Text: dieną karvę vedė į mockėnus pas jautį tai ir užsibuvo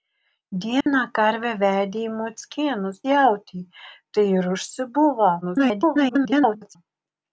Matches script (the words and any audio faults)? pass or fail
fail